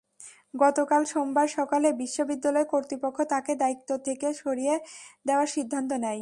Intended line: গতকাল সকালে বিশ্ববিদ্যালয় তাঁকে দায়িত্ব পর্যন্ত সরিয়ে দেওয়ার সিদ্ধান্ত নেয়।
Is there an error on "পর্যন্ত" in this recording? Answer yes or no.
yes